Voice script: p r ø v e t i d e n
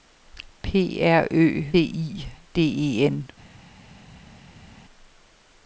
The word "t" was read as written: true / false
false